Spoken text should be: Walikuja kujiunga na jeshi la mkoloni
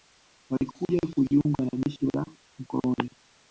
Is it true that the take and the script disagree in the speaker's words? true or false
false